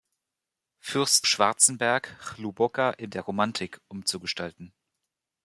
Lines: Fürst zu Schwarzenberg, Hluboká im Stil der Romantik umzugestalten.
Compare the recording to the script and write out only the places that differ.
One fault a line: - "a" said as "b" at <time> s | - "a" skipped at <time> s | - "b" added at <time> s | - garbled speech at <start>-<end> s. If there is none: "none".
- "zu" skipped at 1.3 s
- "Stil" skipped at 3.1 s